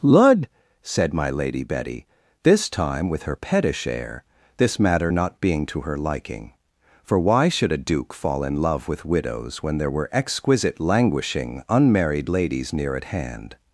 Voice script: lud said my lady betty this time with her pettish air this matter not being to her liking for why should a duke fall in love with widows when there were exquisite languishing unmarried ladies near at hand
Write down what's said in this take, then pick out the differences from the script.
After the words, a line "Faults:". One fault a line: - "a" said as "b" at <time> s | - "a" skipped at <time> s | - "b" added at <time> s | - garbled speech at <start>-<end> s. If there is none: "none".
lud said my lady betty this time with her pettish air this matter not being to her liking for why should a duke fall in love with widows when there were exquisite languishing unmarried ladies near at hand
Faults:
none